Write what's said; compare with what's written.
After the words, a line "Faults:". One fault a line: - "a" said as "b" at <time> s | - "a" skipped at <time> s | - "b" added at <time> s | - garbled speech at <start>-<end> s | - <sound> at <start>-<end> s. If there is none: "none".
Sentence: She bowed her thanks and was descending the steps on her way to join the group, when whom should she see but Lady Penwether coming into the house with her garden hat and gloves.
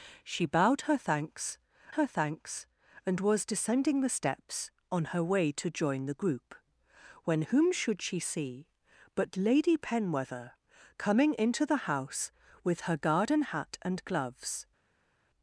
She bowed her thanks her thanks and was descending the steps on her way to join the group, when whom should she see but Lady Penwether coming into the house with her garden hat and gloves.
Faults:
- "her thanks" added at 1.9 s